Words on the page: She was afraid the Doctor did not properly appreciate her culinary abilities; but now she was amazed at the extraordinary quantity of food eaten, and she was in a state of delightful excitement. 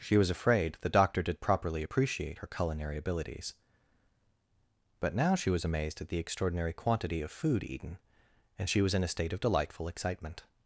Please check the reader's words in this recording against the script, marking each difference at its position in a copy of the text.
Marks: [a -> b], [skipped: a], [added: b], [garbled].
She was afraid the Doctor did [skipped: not] properly appreciate her culinary abilities; but now she was amazed at the extraordinary quantity of food eaten, and she was in a state of delightful excitement.